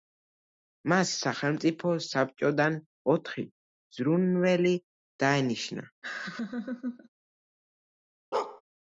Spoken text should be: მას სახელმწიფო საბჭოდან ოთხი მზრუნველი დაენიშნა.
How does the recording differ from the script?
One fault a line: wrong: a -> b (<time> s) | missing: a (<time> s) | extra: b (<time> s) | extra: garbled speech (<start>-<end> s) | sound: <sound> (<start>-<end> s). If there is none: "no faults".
sound: laugh (6.0-7.1 s)
sound: bark (8.3-8.6 s)